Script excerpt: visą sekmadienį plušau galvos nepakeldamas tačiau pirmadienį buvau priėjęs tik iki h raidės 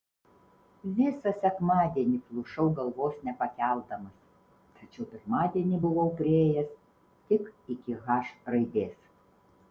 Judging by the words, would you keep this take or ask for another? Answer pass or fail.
pass